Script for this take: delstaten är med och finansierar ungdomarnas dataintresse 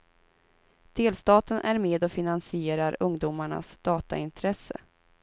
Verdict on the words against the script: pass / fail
pass